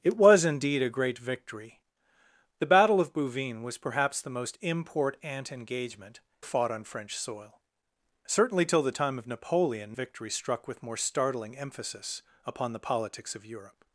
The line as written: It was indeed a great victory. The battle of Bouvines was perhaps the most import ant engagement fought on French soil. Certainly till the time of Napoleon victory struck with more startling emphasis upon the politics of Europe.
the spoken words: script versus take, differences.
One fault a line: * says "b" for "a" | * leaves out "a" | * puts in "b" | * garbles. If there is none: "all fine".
all fine